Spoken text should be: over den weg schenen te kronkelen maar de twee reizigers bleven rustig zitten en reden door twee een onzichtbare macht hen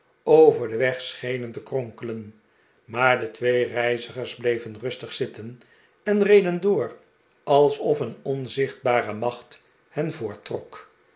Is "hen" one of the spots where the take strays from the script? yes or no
no